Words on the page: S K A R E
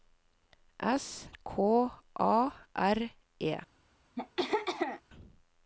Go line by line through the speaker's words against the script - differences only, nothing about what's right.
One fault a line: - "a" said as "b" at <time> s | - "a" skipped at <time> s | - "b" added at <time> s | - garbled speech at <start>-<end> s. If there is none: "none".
none